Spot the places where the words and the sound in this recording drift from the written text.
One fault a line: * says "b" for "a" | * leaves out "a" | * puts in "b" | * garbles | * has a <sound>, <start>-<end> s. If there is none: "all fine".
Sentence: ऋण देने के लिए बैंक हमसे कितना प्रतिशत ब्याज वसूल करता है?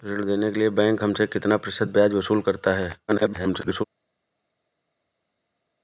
* garbles